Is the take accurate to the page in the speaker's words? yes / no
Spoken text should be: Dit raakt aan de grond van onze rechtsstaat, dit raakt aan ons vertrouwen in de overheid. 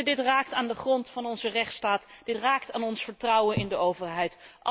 yes